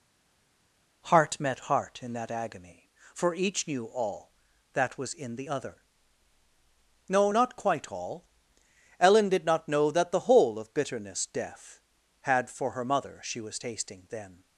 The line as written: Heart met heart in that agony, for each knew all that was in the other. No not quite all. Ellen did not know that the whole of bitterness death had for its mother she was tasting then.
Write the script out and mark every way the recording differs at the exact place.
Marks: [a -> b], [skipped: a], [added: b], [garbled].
Heart met heart in that agony, for each knew all that was in the other. No not quite all. Ellen did not know that the whole of bitterness death had for [its -> her] mother she was tasting then.